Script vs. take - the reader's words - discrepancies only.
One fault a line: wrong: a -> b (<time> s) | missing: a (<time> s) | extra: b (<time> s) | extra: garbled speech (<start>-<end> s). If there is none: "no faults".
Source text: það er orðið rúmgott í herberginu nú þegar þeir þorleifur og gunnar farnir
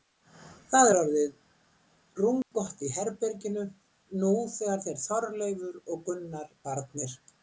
no faults